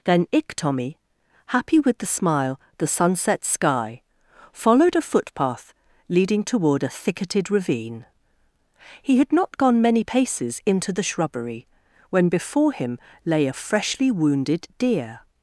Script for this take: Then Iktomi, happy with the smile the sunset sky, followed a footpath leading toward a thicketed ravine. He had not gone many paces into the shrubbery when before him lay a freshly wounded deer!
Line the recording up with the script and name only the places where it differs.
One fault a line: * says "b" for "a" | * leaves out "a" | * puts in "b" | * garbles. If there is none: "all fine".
all fine